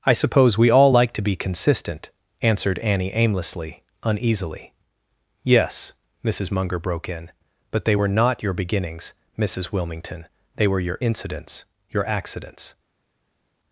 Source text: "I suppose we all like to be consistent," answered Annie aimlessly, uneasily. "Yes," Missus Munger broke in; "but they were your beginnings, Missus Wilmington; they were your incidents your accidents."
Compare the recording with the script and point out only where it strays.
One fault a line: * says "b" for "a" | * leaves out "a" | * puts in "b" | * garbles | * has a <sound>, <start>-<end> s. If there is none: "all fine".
* puts in "not"